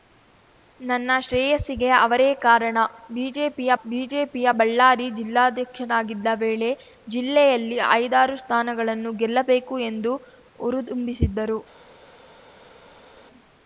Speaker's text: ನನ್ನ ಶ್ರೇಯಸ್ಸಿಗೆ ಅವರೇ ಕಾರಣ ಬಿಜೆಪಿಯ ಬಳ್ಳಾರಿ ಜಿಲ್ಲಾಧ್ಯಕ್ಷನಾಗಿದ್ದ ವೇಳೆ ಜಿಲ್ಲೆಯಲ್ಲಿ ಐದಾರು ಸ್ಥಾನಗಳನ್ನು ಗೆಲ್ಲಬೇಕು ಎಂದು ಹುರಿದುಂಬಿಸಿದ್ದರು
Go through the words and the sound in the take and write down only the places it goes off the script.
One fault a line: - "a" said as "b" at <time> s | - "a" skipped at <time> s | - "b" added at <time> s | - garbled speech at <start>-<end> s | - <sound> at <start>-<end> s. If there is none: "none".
- "ಬಿಜೆಪಿಯ" added at 3.8 s